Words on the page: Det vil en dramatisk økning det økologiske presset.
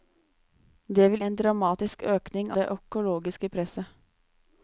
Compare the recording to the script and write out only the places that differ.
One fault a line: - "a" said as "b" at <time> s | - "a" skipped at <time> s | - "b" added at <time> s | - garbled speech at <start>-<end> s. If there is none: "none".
none